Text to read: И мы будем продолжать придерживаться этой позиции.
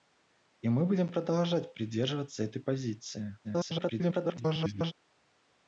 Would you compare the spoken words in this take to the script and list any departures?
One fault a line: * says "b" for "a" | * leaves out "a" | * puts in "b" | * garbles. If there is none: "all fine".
* garbles